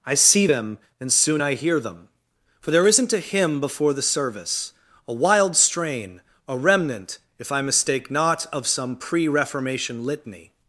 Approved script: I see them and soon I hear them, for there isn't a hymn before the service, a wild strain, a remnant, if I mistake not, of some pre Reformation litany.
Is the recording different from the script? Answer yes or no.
no